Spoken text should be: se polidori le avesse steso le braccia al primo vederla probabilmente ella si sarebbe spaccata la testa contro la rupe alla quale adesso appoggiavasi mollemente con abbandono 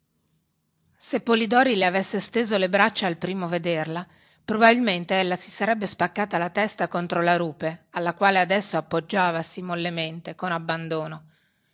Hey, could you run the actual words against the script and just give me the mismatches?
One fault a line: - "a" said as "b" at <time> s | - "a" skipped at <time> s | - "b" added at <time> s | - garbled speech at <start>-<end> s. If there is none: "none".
none